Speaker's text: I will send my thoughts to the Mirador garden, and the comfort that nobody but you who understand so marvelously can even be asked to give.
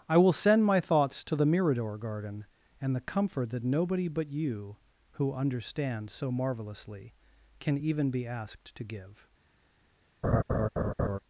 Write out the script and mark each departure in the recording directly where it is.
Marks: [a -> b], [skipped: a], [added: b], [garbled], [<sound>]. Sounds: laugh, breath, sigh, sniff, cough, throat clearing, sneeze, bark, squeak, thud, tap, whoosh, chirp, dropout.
I will send my thoughts to the Mirador garden, and the comfort that nobody but you who understand so marvelously can even be asked to give. [laugh]